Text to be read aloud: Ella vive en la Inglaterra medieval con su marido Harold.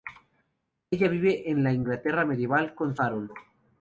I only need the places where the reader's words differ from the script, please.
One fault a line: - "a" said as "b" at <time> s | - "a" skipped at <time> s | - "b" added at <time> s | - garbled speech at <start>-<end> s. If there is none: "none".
- "su marido" skipped at 3.0 s